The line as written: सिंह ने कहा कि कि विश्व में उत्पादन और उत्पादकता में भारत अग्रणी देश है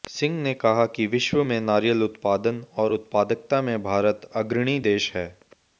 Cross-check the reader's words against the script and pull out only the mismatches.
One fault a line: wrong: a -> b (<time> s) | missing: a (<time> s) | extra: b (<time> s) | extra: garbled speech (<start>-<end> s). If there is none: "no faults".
missing: कि (1.1 s)
extra: नारियल (1.6 s)